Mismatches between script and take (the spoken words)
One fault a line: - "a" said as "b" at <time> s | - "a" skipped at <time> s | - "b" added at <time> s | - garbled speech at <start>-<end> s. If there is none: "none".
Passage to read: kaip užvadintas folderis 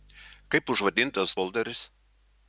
none